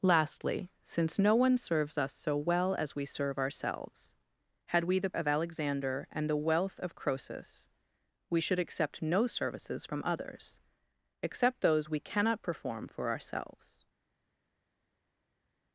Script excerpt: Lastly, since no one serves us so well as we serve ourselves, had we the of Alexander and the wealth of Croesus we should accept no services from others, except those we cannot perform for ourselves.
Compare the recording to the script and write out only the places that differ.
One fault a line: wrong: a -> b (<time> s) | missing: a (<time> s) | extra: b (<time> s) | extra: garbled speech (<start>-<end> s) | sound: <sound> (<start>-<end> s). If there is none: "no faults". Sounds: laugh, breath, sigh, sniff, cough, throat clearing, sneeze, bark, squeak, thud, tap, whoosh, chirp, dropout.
no faults